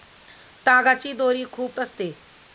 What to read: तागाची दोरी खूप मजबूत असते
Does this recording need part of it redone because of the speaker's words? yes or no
yes